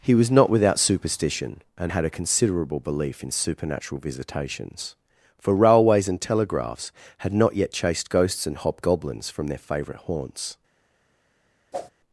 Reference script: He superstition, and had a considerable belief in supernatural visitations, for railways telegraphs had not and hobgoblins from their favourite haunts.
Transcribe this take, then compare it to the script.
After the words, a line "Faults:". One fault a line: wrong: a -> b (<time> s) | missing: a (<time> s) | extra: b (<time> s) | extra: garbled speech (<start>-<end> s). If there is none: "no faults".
He was not without superstition, and had a considerable belief in supernatural visitations, for railways and telegraphs had not yet chased ghosts and hobgoblins from their favourite haunts.
Faults:
extra: was not without (0.1 s)
extra: and (6.1 s)
extra: yet chased ghosts (7.5 s)